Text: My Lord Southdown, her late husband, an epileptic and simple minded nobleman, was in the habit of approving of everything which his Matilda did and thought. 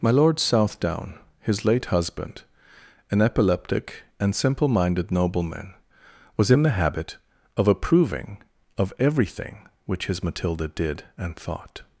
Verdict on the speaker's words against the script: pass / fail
fail